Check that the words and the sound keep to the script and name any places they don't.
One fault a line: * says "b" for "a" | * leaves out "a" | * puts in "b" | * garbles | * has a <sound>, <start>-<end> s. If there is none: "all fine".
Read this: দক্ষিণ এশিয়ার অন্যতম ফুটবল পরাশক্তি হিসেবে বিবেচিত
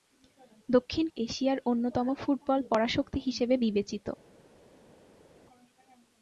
all fine